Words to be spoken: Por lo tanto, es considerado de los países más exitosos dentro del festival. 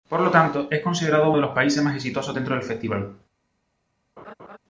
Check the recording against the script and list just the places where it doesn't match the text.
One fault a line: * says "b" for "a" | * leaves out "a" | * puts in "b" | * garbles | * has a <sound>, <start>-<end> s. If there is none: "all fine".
* has a laugh, 4.2-4.6 s